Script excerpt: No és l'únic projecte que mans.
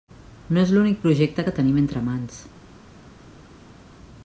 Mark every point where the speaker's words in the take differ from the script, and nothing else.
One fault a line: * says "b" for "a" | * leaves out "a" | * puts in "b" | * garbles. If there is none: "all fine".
* puts in "tenim entre"